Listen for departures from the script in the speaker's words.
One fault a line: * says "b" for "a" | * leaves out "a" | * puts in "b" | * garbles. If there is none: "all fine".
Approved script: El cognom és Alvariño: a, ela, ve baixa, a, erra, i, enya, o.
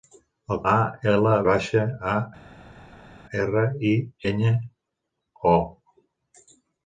* leaves out "cognom és Alvariño"
* leaves out "ve"